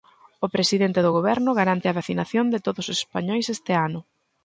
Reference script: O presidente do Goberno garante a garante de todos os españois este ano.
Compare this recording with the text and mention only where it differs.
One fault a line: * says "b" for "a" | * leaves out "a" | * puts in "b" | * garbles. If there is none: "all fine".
* says "vacinación" for "garante"